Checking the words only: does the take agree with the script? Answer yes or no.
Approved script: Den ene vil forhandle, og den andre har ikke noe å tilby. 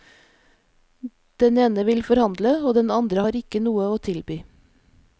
yes